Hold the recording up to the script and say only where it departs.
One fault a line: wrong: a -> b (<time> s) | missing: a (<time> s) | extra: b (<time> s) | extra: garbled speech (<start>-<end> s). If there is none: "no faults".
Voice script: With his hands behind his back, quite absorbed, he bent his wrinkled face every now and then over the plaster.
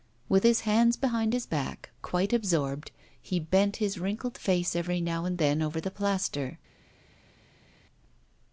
no faults